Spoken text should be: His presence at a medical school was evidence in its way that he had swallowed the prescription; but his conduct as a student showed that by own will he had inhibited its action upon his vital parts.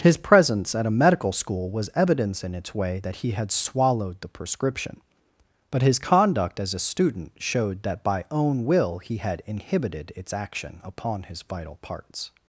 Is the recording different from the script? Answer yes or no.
no